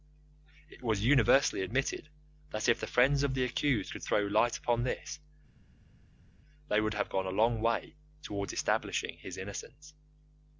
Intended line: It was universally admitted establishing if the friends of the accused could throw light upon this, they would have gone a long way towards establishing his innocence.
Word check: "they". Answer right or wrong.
right